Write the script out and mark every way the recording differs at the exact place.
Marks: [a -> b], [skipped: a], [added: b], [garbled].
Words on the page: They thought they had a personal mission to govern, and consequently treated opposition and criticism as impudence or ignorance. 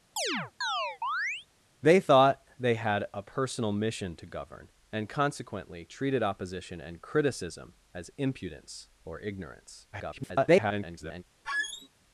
They thought they had a personal mission to govern, and consequently treated opposition and criticism as impudence or ignorance. [garbled]